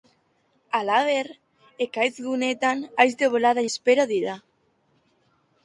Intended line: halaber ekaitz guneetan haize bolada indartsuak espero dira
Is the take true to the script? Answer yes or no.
no